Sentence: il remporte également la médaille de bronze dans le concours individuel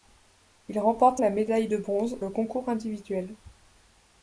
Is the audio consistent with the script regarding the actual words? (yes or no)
no